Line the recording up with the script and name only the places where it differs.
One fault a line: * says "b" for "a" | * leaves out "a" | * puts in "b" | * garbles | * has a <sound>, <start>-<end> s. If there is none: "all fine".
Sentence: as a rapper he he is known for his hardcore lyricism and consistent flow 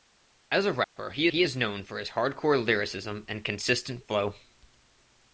* has a dropout, 0.8-1.0 s